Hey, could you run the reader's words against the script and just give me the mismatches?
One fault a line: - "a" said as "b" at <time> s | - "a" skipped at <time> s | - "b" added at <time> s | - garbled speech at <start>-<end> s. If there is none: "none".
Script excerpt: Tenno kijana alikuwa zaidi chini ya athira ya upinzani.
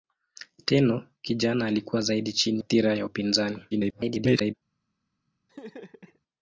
- "ya" skipped at 2.6 s
- garbled speech at 3.7-4.5 s